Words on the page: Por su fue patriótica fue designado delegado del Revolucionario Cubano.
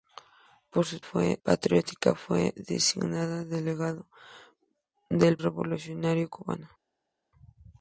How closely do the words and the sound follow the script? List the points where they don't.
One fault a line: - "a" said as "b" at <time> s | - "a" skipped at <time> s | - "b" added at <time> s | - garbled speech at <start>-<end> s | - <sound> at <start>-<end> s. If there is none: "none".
none